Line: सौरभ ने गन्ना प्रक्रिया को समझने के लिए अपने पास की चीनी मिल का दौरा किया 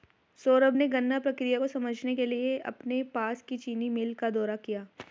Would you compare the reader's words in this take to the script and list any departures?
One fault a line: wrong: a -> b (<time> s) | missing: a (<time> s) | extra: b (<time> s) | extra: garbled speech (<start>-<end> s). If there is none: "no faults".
no faults